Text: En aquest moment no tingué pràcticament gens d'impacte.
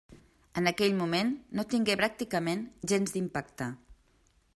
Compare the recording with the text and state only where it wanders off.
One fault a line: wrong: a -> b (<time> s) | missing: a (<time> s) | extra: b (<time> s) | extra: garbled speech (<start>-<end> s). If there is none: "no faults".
wrong: aquest -> aquell (0.7 s)